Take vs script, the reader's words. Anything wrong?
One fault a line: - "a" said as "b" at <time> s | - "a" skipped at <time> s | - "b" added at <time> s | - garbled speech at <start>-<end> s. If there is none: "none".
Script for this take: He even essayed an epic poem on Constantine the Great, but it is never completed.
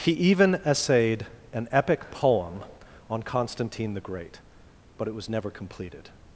- "is" said as "was" at 5.1 s